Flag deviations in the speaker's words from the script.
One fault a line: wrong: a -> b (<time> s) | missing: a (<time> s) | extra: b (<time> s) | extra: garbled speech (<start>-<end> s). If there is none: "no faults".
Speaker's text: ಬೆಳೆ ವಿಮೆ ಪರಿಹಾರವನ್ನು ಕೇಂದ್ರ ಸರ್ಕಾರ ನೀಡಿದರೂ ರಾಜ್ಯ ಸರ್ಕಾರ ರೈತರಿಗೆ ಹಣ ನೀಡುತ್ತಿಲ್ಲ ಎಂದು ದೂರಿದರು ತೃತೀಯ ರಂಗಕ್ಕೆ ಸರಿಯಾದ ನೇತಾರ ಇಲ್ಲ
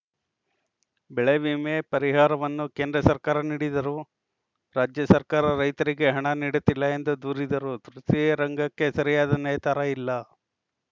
no faults